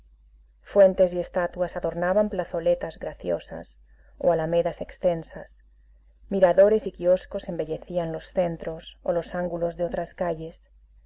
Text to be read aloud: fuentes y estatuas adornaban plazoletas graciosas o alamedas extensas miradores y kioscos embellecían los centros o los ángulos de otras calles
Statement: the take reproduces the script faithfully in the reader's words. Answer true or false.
true